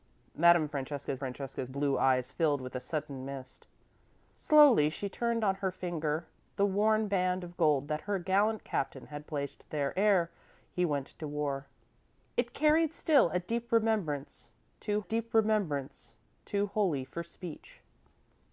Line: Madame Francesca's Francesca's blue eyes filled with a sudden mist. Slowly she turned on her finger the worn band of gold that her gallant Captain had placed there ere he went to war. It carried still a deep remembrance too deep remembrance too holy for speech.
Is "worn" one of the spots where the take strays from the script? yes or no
no